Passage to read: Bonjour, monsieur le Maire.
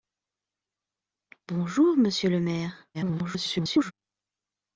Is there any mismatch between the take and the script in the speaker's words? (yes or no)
yes